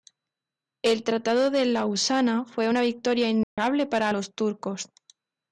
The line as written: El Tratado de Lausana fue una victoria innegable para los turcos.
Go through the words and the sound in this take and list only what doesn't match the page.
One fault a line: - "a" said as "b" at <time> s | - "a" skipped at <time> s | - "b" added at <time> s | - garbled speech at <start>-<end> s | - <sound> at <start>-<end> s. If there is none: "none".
- dropout at 3.4-3.6 s